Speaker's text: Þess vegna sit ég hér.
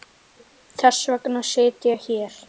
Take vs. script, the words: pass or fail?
pass